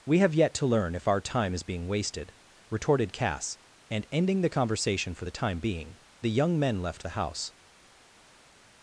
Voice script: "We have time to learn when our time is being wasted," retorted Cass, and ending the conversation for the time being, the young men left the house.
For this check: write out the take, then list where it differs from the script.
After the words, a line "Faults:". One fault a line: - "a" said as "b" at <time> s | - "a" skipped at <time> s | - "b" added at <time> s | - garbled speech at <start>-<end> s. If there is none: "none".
"We have yet to learn if our time is being wasted," retorted Cass, and ending the conversation for the time being, the young men left the house.
Faults:
- "time" said as "yet" at 0.3 s
- "when" said as "if" at 0.9 s